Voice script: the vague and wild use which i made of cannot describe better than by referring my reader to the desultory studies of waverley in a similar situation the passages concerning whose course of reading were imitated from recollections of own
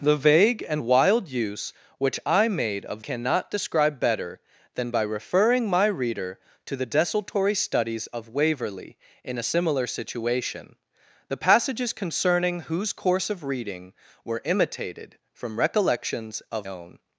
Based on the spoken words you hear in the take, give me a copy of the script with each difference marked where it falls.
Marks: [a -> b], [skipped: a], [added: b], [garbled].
the vague and wild use which i made of cannot describe better than by referring my reader to the desultory studies of waverley in a similar situation the passages concerning whose course of reading were imitated from recollections of own